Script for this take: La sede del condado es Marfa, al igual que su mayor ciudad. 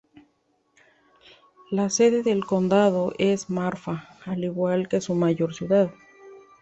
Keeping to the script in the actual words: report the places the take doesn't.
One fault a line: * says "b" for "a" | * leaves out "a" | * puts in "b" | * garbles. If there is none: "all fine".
all fine